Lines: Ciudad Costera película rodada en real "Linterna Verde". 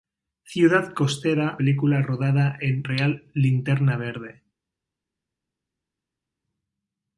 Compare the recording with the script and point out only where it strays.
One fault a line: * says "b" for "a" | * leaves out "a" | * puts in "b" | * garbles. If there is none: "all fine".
all fine